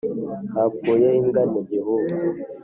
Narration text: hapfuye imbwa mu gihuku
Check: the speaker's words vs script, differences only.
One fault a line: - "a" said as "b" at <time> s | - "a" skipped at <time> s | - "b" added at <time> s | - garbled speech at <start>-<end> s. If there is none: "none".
none